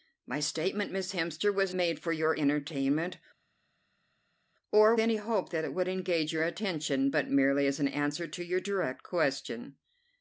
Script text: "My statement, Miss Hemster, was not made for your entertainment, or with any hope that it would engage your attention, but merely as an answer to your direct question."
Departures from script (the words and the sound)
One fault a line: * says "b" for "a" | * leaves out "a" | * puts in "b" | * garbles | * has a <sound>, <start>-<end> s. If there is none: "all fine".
* leaves out "not"
* leaves out "with"